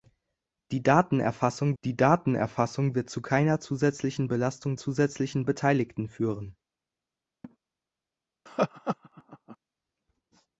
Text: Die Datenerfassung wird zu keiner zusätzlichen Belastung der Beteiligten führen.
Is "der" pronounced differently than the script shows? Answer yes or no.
yes